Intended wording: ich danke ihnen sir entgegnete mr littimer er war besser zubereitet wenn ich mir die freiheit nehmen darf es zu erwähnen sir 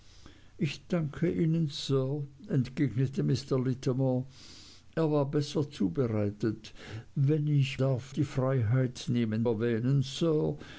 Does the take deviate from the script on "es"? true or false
true